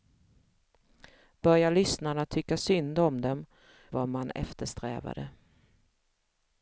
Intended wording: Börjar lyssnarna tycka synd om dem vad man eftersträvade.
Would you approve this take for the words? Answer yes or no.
yes